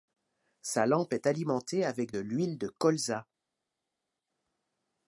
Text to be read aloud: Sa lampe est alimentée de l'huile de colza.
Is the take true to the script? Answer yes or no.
no